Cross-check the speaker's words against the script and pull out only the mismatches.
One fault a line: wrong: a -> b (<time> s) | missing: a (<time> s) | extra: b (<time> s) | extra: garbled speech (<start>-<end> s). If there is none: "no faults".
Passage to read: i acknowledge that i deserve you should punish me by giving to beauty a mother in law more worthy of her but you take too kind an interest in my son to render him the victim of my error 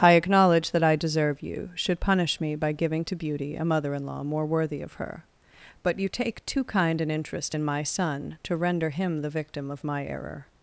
no faults